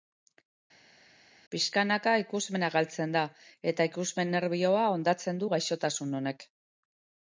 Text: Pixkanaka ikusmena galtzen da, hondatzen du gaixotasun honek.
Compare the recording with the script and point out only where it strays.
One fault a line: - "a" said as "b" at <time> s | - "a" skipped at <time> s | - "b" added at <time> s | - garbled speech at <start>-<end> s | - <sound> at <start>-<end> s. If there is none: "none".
- "eta ikusmen nerbioa" added at 3.7 s